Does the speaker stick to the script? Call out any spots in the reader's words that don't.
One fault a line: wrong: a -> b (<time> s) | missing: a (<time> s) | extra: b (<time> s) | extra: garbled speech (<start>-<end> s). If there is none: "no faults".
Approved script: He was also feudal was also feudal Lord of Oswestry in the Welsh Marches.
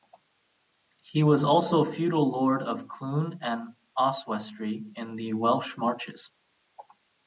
wrong: was also feudal Lord of -> Lord of Clun and (2.3 s)